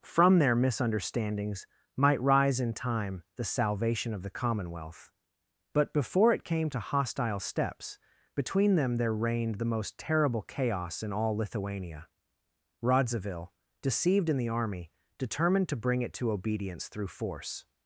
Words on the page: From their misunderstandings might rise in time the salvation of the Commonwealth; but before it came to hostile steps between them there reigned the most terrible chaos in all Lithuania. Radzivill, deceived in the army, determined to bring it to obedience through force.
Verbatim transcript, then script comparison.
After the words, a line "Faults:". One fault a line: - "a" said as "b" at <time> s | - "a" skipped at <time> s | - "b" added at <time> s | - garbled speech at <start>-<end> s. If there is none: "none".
From their misunderstandings might rise in time the salvation of the Commonwealth; but before it came to hostile steps between them there reigned the most terrible chaos in all Lithuania. Radzivill, deceived in the army, determined to bring it to obedience through force.
Faults:
none